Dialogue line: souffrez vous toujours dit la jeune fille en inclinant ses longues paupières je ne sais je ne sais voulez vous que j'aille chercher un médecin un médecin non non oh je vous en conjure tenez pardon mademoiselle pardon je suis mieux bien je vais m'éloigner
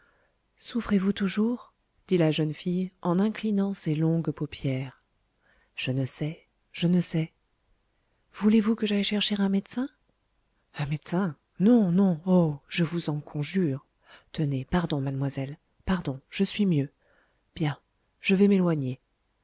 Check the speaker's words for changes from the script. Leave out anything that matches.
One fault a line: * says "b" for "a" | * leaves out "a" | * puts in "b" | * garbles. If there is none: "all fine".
all fine